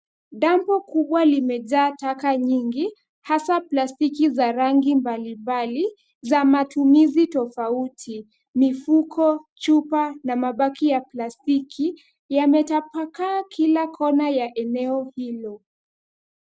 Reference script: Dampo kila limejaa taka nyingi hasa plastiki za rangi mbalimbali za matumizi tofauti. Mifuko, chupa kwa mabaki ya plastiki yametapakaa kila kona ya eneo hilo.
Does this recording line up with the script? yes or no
no